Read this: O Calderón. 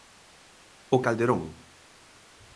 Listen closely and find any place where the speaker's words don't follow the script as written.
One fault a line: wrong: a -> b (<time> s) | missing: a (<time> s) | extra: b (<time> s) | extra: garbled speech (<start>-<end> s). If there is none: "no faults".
no faults